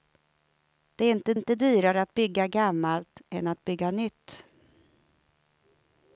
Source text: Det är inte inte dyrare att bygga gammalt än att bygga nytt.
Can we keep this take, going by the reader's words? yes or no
yes